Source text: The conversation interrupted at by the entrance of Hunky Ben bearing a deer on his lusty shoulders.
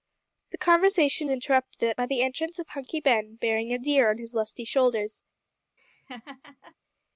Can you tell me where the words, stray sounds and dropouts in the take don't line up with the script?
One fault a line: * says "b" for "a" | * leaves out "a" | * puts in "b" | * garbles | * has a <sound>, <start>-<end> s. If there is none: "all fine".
* has a laugh, 5.8-6.8 s